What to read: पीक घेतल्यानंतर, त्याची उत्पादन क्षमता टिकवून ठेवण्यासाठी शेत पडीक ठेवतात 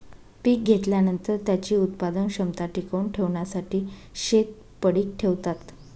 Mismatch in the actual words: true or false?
false